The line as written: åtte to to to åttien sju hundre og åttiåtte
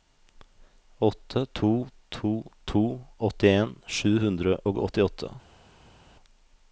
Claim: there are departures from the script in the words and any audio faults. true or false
false